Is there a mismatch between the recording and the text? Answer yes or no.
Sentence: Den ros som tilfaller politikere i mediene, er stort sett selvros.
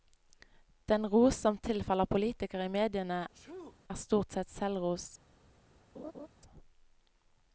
no